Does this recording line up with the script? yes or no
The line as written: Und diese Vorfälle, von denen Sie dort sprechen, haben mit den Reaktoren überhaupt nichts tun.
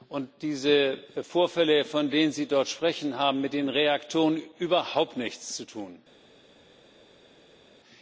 no